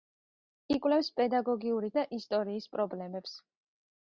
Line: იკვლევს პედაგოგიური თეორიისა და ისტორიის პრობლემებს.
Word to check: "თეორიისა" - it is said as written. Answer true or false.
false